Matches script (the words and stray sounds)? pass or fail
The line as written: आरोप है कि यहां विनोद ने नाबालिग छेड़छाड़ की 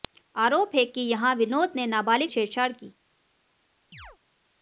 fail